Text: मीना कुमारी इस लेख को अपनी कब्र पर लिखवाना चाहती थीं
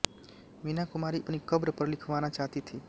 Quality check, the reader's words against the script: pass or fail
fail